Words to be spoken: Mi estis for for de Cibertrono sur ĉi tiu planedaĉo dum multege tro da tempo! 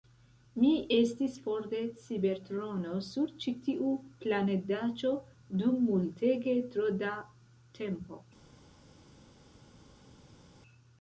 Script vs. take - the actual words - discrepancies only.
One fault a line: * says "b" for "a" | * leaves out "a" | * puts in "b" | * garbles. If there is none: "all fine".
* leaves out "for"